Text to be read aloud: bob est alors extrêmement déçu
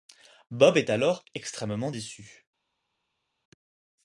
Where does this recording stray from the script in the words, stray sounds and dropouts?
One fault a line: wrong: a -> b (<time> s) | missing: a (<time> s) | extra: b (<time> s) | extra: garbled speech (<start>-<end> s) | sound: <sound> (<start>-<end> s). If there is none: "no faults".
no faults